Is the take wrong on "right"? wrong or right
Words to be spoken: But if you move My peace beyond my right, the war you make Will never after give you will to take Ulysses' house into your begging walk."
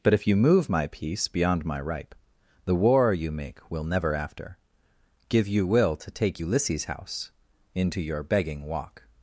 wrong